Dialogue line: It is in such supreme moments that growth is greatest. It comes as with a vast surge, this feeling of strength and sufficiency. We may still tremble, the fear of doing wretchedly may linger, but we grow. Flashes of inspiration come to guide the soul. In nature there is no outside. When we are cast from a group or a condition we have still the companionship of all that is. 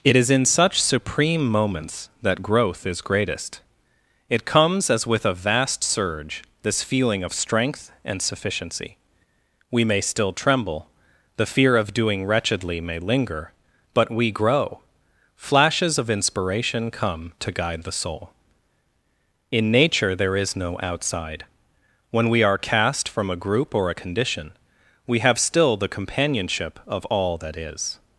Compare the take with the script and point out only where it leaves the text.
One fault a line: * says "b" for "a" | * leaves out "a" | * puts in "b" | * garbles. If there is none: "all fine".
all fine